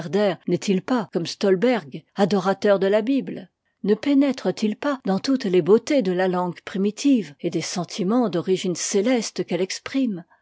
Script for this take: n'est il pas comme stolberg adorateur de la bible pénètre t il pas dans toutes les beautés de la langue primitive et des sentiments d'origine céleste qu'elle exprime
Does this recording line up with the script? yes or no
no